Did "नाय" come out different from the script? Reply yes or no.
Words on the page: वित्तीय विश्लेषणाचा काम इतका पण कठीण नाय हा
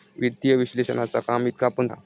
yes